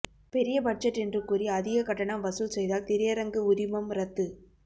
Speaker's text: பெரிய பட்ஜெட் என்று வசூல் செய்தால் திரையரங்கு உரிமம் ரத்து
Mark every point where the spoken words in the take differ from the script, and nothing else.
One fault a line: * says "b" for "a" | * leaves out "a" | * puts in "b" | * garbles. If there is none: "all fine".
* puts in "கூறி அதிக கட்டணம்"